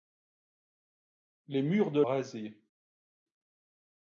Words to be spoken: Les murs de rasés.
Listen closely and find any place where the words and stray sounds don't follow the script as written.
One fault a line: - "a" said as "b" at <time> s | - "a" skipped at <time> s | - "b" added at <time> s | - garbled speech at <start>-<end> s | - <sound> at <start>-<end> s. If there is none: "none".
none